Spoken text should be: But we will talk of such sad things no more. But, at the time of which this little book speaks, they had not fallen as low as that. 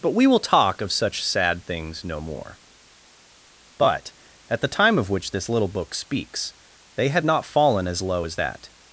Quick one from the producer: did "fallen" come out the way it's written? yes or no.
yes